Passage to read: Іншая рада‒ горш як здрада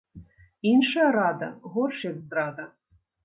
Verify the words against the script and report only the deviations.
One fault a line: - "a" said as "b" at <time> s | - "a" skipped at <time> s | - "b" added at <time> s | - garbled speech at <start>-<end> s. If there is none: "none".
none